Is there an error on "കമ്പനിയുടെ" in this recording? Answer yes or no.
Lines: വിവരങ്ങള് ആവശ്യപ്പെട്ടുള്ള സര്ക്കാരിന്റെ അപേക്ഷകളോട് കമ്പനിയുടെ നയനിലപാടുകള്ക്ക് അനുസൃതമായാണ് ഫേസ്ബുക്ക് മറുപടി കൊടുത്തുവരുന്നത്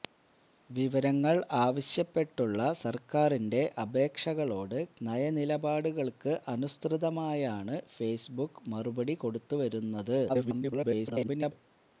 yes